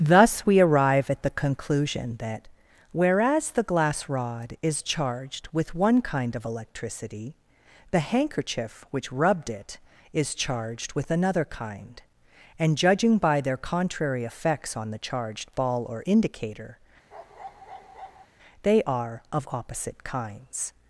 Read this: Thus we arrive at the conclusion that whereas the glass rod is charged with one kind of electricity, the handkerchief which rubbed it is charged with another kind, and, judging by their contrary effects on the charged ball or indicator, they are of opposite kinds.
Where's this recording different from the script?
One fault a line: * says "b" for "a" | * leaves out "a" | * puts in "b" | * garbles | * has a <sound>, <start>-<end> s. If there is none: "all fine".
* has a bark, 17.1-18.3 s